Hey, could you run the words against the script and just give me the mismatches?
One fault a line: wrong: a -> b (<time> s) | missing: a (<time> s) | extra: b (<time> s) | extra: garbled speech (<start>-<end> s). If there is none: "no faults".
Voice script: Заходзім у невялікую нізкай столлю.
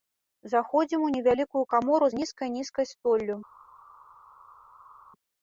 extra: камору з нізкай (1.7 s)